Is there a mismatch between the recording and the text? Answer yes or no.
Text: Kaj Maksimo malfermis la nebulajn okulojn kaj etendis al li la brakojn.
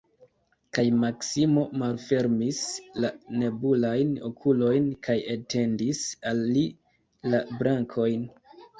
no